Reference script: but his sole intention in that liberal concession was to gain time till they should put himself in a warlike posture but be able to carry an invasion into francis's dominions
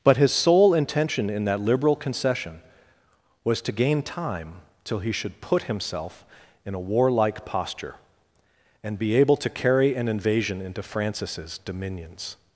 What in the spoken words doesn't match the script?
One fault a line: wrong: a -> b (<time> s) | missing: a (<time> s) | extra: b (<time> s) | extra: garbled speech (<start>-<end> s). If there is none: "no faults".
wrong: they -> he (5.0 s)
wrong: but -> and (8.8 s)